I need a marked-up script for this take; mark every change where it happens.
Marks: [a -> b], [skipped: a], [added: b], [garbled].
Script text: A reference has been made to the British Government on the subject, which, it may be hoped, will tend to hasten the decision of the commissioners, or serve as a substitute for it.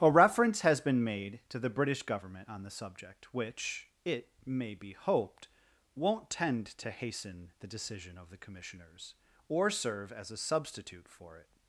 A reference has been made to the British Government on the subject, which, it may be hoped, [will -> won't] tend to hasten the decision of the commissioners, or serve as a substitute for it.